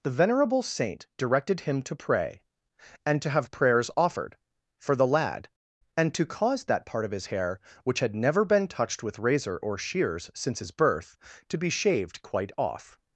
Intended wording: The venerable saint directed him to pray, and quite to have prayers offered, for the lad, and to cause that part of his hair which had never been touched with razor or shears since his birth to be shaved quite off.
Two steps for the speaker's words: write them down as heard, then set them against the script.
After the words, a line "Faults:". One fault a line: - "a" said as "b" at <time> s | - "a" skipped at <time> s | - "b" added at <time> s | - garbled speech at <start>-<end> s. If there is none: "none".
The venerable saint directed him to pray, and to have prayers offered, for the lad, and to cause that part of his hair which had never been touched with razor or shears since his birth to be shaved quite off.
Faults:
- "quite" skipped at 3.2 s